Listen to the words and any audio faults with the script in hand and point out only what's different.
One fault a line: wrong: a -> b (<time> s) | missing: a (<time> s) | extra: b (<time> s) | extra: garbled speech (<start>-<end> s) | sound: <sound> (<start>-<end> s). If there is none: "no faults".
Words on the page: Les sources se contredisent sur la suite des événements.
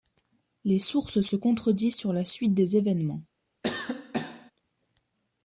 sound: cough (3.6-4.5 s)